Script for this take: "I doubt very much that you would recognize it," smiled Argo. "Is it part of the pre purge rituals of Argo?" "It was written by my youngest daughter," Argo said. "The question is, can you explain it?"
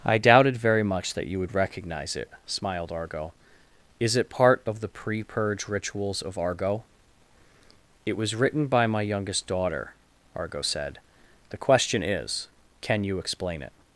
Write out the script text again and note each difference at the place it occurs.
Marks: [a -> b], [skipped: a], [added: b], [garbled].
"I [doubt -> doubted] very much that you would recognize it," smiled Argo. "Is it part of the pre purge rituals of Argo?" "It was written by my youngest daughter," Argo said. "The question is, can you explain it?"